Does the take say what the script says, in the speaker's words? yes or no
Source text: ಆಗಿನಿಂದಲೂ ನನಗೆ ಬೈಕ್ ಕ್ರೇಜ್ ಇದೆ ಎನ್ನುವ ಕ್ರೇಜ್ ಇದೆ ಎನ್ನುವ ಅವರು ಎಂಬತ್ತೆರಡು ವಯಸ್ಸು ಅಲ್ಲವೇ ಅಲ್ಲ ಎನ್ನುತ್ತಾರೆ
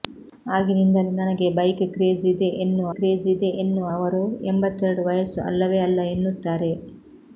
yes